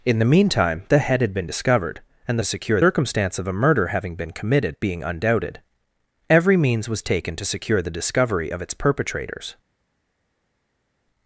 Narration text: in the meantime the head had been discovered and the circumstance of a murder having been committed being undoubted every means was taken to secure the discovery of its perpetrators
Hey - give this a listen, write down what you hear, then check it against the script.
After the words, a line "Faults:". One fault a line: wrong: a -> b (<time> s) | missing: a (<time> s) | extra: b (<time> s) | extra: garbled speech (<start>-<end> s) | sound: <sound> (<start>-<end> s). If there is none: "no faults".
in the meantime the head had been discovered and secure circumstance of a murder having been committed being undoubted every means was taken to secure the discovery of its perpetrators
Faults:
wrong: the -> secure (2.4 s)